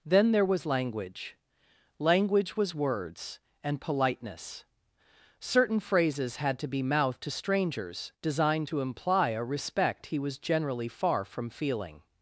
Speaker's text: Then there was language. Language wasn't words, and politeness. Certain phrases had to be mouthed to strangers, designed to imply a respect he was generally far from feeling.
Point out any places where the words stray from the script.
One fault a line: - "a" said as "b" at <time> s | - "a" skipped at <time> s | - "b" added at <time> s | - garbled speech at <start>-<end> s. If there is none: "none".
- "wasn't" said as "was" at 2.6 s